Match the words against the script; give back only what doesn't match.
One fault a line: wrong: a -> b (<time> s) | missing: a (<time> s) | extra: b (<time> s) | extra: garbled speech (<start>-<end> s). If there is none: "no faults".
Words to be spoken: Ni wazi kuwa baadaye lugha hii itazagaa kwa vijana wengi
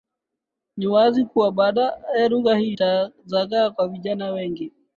no faults